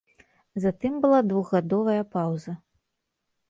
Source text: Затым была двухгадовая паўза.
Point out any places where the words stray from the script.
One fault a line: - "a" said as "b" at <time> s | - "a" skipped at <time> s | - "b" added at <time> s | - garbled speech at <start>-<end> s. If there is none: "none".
none